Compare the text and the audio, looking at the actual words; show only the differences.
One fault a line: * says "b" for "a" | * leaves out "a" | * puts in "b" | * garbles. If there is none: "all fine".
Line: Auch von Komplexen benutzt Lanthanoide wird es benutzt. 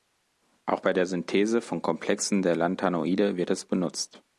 * puts in "bei der Synthese"
* says "der" for "benutzt"